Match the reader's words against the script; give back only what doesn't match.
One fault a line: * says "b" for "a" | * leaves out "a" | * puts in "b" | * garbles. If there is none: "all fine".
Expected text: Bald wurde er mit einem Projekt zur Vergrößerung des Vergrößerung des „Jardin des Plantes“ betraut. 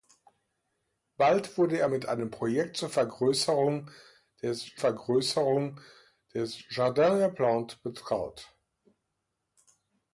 all fine